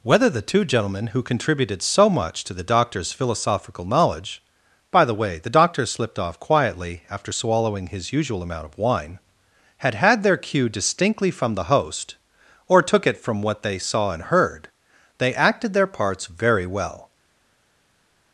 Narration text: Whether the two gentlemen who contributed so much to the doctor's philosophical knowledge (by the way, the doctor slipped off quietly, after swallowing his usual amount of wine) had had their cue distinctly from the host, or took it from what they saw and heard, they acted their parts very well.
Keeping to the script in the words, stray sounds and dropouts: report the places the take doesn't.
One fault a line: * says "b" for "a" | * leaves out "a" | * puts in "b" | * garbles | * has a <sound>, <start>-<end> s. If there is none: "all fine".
all fine